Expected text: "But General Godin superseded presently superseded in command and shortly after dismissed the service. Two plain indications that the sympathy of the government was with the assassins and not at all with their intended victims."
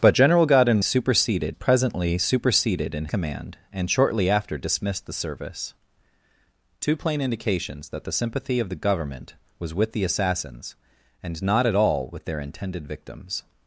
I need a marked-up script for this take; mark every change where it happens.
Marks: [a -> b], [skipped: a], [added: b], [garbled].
"But General Godin superseded presently superseded in command and shortly after dismissed the service. Two plain indications that the sympathy of the government was with the assassins and not at all with their intended victims."